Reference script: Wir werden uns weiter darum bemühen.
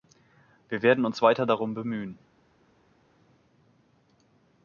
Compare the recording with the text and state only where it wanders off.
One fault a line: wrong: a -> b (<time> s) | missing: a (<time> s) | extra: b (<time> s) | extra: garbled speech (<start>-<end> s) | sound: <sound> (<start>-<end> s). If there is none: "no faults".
no faults